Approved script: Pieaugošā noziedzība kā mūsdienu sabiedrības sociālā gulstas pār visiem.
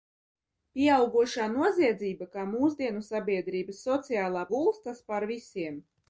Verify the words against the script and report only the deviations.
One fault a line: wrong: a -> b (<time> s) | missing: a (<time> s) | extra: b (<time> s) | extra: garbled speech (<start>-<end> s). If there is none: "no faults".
no faults